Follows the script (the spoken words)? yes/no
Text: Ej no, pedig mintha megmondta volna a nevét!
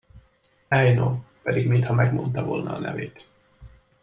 yes